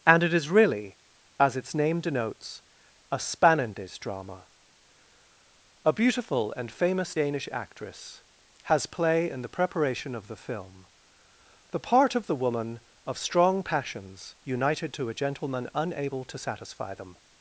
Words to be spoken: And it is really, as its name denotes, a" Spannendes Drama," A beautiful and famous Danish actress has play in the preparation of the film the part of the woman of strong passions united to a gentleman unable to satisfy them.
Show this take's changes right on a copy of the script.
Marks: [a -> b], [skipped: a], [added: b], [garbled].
And it is really, as its name denotes, a" Spannendes Drama," A beautiful and famous Danish actress has play in the preparation of the film the part of the woman of strong passions united to a gentleman unable to satisfy them.